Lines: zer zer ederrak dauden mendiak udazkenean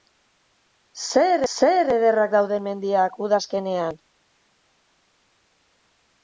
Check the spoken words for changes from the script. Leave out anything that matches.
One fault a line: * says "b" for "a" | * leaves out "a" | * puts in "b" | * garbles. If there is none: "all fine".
all fine